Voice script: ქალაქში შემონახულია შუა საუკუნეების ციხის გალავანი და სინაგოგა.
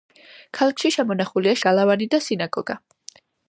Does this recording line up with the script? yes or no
no